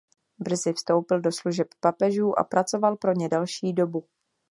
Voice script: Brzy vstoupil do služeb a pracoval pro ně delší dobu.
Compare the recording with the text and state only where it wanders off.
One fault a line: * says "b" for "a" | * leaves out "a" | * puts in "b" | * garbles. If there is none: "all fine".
* puts in "papežů"